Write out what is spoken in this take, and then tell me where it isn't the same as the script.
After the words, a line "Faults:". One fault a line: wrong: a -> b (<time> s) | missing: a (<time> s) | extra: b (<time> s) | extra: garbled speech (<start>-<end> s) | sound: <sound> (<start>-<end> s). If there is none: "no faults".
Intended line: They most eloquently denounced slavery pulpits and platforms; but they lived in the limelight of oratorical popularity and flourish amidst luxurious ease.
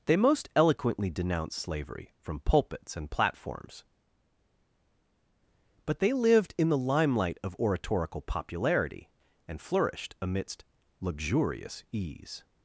They most eloquently denounced slavery from pulpits and platforms; but they lived in the limelight of oratorical popularity and flourished amidst luxurious ease.
Faults:
extra: from (2.2 s)
wrong: flourish -> flourished (9.6 s)